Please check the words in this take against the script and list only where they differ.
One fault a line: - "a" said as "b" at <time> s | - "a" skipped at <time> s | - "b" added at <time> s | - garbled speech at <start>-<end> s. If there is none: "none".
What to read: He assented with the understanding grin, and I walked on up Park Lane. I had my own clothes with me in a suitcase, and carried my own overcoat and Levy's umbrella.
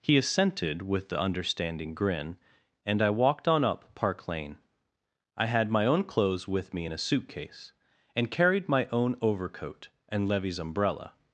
none